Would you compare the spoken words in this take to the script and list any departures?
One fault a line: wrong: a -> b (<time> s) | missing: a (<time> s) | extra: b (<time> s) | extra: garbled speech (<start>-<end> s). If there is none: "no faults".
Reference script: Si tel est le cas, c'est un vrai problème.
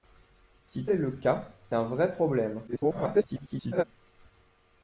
missing: tel (0.8 s)
missing: c'est (1.5 s)
extra: garbled speech (2.7-3.8 s)